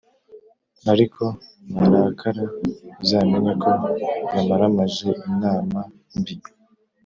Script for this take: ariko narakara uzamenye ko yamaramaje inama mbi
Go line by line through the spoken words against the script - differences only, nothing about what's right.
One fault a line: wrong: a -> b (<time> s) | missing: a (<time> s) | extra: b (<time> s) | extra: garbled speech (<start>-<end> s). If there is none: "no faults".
no faults